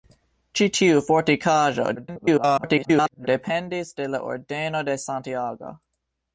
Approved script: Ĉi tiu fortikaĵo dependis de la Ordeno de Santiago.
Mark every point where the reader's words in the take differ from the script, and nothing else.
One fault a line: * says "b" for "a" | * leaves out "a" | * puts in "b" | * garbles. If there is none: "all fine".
* garbles